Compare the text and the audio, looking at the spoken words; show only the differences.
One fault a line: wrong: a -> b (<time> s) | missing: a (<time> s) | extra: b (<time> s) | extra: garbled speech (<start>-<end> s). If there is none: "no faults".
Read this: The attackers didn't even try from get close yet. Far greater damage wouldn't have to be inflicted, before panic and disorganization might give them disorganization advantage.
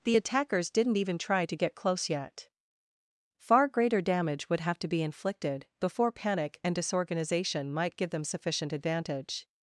wrong: from -> to (1.4 s)
wrong: wouldn't -> would (4.5 s)
wrong: disorganization -> sufficient (8.2 s)